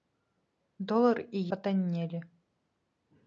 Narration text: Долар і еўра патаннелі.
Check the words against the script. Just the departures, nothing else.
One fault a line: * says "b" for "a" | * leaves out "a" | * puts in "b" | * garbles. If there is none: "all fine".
* leaves out "еўра"